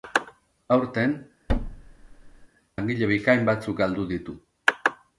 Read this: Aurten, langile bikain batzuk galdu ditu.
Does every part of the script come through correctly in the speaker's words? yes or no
yes